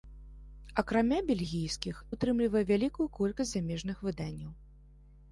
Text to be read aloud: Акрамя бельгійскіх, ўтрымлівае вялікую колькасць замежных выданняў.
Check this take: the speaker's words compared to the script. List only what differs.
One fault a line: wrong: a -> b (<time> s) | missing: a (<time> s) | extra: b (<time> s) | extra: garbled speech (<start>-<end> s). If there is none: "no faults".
no faults